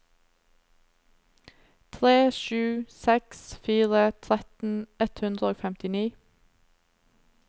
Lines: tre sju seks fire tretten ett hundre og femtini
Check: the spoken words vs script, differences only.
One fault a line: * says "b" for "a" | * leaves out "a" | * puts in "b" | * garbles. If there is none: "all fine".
all fine